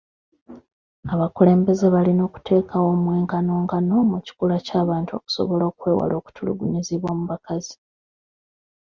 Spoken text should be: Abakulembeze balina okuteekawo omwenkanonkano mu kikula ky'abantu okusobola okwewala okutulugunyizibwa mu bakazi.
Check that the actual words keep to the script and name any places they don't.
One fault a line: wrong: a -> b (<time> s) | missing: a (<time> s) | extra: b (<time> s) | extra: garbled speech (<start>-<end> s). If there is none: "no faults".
no faults